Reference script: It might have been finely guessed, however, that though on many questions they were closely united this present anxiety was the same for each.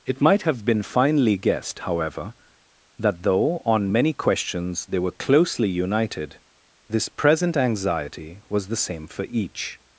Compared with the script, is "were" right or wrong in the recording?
right